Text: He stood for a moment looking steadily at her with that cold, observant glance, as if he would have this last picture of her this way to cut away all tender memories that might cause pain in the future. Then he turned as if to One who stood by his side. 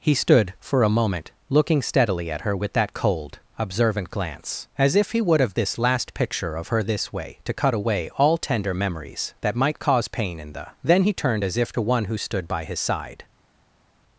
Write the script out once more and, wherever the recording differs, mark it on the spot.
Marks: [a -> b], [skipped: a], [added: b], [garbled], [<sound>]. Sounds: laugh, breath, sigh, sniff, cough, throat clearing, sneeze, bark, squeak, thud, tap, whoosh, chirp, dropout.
He stood for a moment looking steadily at her with that cold, observant glance, as if he would have this last picture of her this way to cut away all tender memories that might cause pain in the [skipped: future.] Then he turned as if to One who stood by his side.